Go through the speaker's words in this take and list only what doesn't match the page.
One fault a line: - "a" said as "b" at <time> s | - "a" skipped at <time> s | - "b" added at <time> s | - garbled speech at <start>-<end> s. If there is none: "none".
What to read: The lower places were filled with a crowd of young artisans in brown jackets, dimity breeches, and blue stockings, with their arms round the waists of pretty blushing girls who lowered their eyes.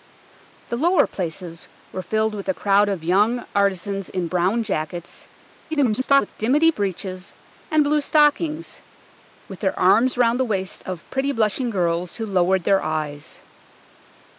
- garbled speech at 5.7-6.3 s